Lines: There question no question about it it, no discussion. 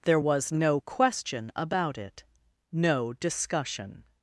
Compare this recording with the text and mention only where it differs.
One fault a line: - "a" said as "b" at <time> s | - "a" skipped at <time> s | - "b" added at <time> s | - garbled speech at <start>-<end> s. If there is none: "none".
- "question" said as "was" at 0.2 s
- "it" skipped at 2.2 s